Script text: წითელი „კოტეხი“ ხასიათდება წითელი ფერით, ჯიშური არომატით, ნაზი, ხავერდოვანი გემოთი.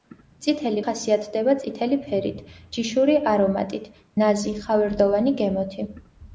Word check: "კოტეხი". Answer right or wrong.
wrong